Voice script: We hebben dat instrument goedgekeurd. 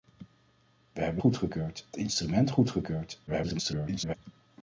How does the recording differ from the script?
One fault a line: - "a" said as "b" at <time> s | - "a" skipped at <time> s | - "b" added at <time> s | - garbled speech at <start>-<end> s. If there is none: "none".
- "dat" said as "goedgekeurd" at 1.2 s
- garbled speech at 3.3-4.2 s